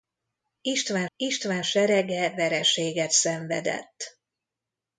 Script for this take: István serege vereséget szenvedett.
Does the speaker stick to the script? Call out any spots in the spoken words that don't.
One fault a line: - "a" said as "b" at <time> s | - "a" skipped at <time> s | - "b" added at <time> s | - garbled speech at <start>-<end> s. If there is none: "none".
- "istván" added at 1.2 s